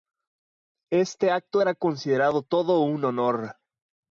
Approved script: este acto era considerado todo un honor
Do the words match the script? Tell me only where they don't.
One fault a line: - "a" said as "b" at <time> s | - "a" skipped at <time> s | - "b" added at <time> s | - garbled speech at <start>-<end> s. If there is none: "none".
none